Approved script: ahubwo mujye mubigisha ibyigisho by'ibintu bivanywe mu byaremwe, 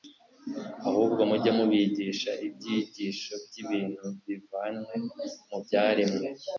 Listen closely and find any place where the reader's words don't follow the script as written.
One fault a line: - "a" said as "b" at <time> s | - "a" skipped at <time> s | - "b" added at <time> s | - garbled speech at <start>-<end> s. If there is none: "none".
none